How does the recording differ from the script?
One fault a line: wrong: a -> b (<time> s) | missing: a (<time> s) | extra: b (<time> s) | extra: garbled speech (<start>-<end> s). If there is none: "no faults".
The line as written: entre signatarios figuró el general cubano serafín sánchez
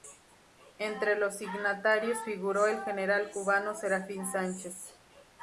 extra: los (1.1 s)